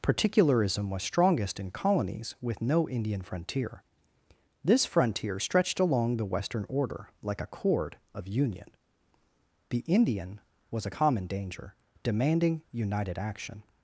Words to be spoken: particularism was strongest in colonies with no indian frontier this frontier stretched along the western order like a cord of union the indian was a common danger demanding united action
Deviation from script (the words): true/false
false